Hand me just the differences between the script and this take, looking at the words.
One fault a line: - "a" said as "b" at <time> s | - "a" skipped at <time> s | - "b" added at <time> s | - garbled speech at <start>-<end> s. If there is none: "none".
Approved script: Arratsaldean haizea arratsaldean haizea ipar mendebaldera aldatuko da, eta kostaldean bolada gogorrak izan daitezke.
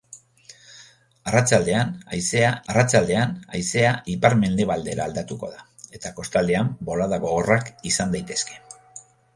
none